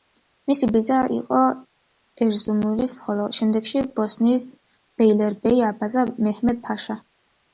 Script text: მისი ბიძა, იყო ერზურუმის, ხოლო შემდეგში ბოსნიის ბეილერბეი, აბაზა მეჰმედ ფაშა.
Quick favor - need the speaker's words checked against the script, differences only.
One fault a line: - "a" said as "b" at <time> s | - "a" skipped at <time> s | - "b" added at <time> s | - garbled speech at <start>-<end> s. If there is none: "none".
none